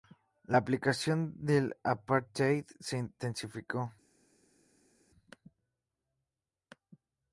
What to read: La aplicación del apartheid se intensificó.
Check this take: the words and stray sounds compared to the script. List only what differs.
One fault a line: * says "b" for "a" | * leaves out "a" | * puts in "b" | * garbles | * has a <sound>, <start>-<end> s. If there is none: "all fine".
all fine